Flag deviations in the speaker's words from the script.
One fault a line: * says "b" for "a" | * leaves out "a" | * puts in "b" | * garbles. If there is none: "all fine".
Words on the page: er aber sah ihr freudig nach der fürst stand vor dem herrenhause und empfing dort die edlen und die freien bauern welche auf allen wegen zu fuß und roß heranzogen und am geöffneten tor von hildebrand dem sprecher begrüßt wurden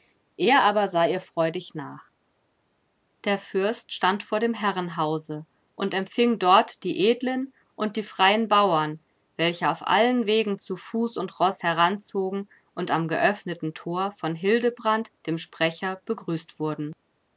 all fine